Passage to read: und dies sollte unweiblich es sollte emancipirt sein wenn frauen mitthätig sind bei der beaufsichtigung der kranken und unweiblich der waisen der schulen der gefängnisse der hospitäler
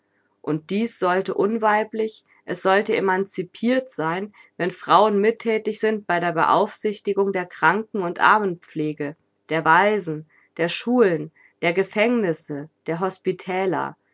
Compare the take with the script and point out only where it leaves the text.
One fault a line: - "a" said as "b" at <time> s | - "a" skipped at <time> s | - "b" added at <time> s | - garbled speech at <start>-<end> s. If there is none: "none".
- "unweiblich" said as "armenpflege" at 8.2 s